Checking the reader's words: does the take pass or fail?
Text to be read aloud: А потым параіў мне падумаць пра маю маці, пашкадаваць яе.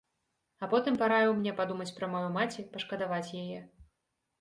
pass